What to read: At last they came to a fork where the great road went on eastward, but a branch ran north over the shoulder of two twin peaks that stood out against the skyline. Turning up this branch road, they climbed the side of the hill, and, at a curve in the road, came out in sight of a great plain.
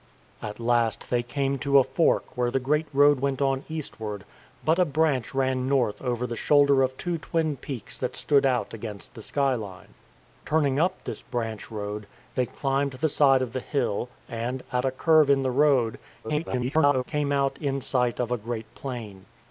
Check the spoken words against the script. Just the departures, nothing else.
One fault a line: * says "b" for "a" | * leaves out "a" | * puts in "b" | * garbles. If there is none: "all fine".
* garbles